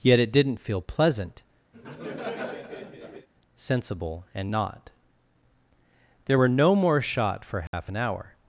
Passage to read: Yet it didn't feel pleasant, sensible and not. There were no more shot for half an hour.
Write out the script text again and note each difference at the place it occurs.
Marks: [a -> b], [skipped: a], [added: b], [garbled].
Yet it didn't feel pleasant, sensible and not. There were no more shot for half an hour.